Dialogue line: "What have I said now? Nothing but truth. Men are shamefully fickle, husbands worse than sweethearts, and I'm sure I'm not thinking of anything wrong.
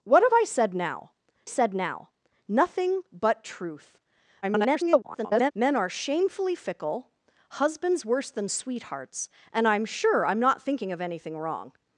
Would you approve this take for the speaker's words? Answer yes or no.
no